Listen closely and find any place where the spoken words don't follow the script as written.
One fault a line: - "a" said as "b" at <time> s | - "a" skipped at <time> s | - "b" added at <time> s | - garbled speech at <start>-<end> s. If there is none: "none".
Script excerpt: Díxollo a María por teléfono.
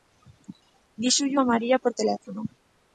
none